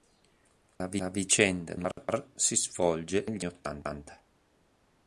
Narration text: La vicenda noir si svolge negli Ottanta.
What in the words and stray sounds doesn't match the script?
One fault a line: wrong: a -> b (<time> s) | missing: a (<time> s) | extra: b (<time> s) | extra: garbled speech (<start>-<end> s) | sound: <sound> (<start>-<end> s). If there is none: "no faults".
sound: dropout (0.8-0.8 s)
sound: dropout (1.9-2.0 s)